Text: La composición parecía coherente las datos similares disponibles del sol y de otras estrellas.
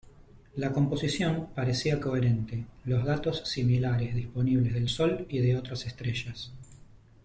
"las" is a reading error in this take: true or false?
true